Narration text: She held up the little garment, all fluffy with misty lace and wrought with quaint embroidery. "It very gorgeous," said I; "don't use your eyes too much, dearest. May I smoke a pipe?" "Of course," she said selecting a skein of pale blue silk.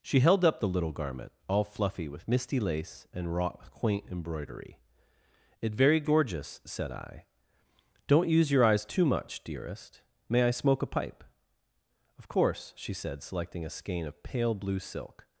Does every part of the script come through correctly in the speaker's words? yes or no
yes